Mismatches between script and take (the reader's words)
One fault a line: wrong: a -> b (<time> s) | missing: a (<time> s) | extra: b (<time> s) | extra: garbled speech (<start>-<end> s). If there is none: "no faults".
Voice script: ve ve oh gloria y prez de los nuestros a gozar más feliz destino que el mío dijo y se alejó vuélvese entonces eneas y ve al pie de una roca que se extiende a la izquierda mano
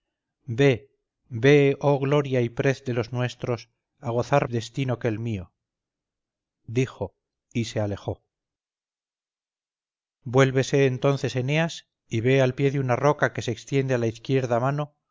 missing: más feliz (4.5 s)